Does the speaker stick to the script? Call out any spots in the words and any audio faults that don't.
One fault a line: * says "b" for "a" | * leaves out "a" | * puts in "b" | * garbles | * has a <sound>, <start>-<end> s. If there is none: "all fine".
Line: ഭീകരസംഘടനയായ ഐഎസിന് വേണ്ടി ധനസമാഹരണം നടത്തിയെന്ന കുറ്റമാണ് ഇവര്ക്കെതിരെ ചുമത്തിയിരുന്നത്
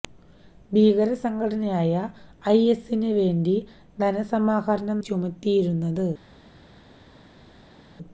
* leaves out "നടത്തിയെന്ന കുറ്റമാണ് ഇവര്ക്കെതിരെ"